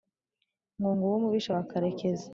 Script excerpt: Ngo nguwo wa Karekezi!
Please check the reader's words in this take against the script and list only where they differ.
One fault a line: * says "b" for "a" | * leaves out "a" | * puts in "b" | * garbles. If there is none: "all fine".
* puts in "umubisha"